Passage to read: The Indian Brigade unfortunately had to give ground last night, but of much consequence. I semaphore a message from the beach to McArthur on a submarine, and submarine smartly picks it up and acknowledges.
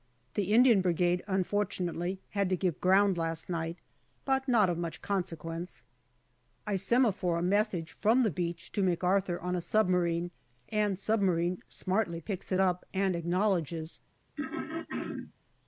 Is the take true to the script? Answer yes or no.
no